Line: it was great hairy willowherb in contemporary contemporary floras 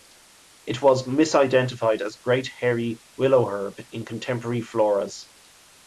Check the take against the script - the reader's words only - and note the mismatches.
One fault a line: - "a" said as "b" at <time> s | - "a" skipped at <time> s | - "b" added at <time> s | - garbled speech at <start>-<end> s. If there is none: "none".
- "misidentified as" added at 1.1 s
- "contemporary" skipped at 4.6 s